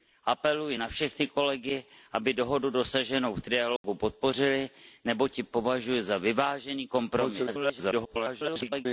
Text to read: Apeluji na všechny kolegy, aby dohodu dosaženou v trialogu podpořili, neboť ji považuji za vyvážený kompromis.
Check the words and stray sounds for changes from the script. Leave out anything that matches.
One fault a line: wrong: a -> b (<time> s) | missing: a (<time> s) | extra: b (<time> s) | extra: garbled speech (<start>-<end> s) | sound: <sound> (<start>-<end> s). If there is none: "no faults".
sound: dropout (3.8-3.8 s)
extra: garbled speech (7.5-8.9 s)